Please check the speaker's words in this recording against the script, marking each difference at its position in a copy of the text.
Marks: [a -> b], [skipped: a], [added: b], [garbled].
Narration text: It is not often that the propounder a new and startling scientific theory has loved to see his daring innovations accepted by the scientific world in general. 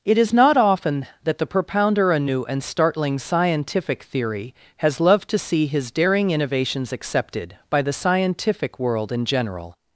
It is not often that the propounder a new and startling scientific theory has loved to see his daring innovations accepted by the scientific world in general.